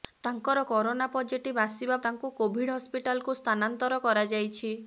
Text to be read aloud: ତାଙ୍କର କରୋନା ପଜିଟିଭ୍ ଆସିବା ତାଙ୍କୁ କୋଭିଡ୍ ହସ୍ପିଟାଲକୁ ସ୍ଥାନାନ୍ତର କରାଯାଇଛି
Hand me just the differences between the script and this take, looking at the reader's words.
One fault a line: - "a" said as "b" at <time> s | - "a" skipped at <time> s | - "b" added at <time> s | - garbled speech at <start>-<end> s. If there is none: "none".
none